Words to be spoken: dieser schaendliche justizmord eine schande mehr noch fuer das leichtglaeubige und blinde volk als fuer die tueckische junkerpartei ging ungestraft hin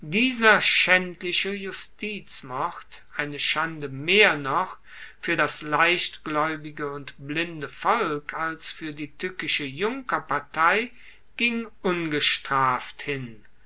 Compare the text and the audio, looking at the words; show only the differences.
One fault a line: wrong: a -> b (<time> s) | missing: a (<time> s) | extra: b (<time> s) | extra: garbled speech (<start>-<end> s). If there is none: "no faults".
no faults